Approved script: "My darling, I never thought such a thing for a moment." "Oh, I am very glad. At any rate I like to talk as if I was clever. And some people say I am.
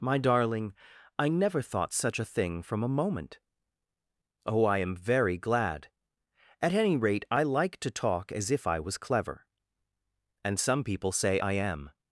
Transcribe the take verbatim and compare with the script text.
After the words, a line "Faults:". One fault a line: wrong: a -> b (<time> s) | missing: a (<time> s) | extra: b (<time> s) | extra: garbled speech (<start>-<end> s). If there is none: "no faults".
"My darling, I never thought such a thing from a moment." "Oh, I am very glad. At any rate I like to talk as if I was clever. And some people say I am.
Faults:
wrong: for -> from (2.6 s)